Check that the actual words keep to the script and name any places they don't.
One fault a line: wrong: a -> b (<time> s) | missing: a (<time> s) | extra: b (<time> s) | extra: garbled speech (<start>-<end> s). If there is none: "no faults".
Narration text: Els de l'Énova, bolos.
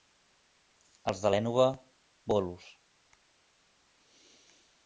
no faults